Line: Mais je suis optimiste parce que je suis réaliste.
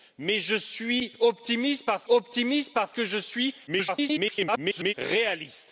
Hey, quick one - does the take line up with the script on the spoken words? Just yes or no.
no